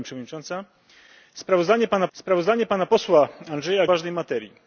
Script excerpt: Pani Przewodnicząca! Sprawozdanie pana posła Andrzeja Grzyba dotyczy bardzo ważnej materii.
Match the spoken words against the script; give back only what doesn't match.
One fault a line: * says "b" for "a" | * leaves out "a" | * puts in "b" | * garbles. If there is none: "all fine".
* puts in "sprawozdanie pana"
* leaves out "Grzyba dotyczy bardzo"